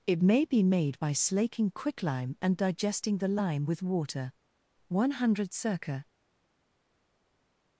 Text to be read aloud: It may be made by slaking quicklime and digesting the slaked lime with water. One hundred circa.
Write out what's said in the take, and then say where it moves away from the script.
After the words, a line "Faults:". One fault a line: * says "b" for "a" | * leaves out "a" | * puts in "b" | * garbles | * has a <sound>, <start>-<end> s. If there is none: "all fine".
It may be made by slaking quicklime and digesting the lime with water. One hundred circa.
Faults:
* leaves out "slaked"